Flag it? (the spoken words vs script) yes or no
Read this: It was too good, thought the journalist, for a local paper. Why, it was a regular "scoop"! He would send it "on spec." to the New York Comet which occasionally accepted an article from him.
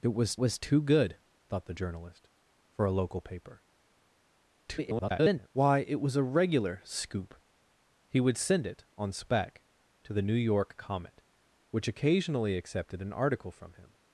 yes